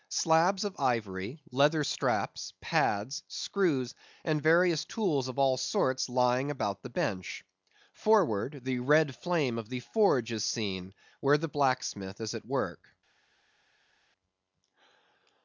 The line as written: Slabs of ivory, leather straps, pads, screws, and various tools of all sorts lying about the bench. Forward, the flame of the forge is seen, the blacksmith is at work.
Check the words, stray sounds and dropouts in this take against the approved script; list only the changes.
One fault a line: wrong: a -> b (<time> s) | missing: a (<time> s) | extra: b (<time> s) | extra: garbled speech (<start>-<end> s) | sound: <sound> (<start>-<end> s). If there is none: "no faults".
extra: red (8.8 s)
extra: where (11.2 s)